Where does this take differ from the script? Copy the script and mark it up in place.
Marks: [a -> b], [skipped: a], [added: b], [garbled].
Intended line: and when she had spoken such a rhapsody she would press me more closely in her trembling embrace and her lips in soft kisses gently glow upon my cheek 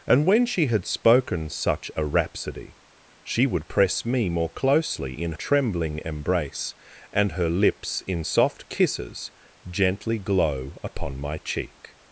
and when she had spoken such a rhapsody she would press me more closely in [skipped: her] trembling embrace and her lips in soft kisses gently glow upon my cheek